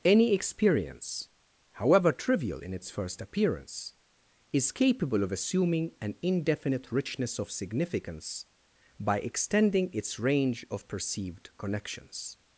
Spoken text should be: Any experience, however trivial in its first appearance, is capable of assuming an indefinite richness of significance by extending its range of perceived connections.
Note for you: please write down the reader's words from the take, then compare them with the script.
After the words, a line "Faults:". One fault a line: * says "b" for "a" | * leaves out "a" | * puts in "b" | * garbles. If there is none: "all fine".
Any experience, however trivial in its first appearance, is capable of assuming an indefinite richness of significance by extending its range of perceived connections.
Faults:
all fine